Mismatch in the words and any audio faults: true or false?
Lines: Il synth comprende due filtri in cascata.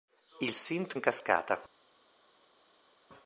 true